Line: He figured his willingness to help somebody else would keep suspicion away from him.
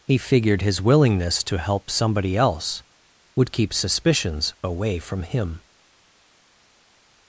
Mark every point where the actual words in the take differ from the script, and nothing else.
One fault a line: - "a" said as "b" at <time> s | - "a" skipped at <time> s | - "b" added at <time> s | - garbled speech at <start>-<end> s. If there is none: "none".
- "suspicion" said as "suspicions" at 3.7 s